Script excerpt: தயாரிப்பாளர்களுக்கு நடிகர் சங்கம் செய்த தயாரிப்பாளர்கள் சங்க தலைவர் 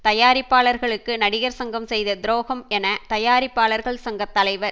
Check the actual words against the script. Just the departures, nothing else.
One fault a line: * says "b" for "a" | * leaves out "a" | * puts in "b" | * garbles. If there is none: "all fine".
* puts in "துரோகம் என"